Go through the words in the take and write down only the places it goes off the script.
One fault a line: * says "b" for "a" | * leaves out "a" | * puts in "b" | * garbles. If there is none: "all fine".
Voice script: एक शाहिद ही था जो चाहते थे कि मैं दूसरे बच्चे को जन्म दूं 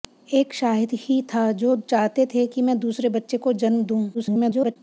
* garbles